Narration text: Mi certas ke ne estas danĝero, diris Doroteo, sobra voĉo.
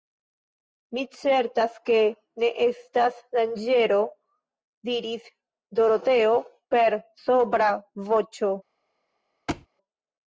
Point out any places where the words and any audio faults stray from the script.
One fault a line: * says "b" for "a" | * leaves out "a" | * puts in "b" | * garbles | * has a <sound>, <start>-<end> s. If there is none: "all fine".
* puts in "per"
* has a thud, 9.5-9.7 s